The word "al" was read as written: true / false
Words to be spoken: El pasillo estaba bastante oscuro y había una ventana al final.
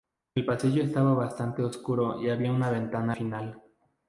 false